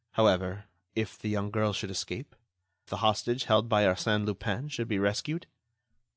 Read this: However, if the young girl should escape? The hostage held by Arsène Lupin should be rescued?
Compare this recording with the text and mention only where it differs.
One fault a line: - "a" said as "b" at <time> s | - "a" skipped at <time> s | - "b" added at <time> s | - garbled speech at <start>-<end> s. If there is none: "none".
none